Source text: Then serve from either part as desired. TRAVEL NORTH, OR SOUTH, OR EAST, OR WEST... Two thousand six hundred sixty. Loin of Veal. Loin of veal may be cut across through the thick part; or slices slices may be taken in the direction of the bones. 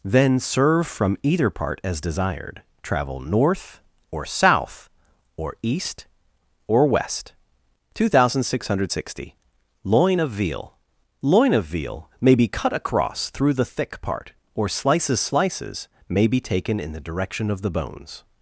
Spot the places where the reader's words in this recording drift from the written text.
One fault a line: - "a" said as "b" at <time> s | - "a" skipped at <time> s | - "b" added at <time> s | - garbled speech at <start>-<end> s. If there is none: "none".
none